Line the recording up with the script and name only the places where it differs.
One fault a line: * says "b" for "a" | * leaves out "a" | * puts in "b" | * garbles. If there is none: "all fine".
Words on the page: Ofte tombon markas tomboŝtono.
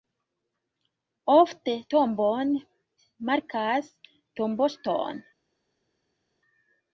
all fine